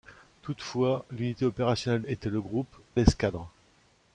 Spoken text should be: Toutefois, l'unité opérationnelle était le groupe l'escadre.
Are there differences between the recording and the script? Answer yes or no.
no